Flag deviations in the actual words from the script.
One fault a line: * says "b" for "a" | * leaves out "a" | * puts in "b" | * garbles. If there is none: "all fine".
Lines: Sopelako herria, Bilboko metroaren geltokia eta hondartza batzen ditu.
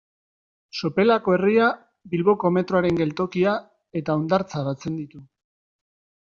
all fine